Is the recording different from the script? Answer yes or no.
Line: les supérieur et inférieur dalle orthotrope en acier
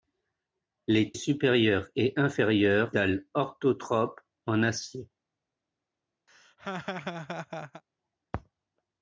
no